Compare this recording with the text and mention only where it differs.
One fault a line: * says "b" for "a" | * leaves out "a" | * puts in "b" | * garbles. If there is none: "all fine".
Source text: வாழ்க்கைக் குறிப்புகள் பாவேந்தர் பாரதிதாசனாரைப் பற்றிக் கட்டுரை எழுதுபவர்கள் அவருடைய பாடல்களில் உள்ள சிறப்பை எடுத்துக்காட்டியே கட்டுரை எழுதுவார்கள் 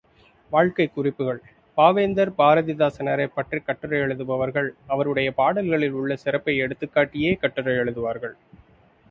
all fine